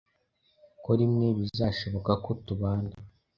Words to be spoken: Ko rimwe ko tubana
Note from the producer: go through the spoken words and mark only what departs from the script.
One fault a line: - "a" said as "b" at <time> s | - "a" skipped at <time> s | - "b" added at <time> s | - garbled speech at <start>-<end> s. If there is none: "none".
- "bizashoboka" added at 1.4 s